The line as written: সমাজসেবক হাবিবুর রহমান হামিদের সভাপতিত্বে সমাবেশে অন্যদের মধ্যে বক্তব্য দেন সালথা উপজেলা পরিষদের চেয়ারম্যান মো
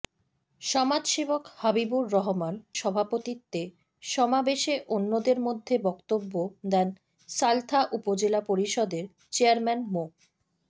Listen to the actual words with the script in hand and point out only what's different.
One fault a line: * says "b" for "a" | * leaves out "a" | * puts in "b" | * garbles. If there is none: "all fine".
* leaves out "হামিদের"